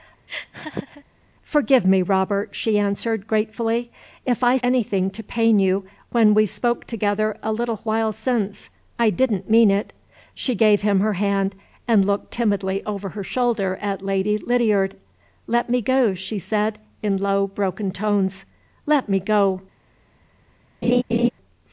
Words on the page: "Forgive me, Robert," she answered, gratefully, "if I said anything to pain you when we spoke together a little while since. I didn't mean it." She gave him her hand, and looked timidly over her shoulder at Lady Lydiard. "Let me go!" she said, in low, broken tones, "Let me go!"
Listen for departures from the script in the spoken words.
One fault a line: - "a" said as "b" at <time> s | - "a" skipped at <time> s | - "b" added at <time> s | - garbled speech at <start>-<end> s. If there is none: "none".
- "said" skipped at 4.6 s